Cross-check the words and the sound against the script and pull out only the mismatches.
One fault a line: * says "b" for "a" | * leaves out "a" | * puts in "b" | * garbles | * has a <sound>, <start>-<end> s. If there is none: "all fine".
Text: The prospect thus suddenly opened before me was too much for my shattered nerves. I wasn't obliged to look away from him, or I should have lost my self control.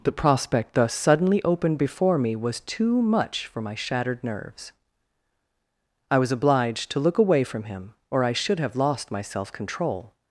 * says "was" for "wasn't"